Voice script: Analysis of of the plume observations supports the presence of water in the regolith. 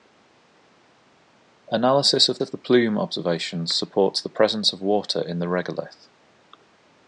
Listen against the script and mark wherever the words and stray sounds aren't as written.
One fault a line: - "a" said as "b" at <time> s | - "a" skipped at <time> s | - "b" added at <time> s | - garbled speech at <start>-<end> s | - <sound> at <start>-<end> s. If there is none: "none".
none